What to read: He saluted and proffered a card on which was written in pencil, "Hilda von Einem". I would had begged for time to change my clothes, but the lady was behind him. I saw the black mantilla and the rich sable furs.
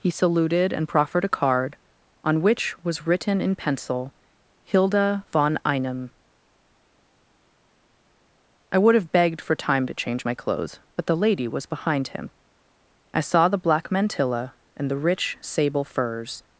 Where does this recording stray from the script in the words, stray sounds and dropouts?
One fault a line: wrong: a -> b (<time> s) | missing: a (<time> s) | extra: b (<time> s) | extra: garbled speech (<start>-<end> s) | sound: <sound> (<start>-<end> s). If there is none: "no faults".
wrong: had -> have (8.9 s)